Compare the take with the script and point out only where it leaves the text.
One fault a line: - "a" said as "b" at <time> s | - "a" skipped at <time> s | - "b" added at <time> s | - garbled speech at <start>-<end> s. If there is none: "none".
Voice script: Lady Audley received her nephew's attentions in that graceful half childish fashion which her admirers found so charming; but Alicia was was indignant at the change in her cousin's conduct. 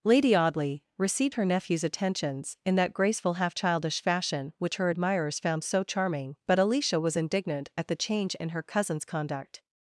- "was" skipped at 7.2 s